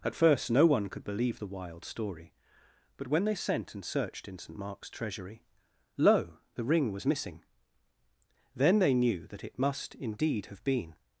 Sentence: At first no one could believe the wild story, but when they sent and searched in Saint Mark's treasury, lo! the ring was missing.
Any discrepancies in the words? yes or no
yes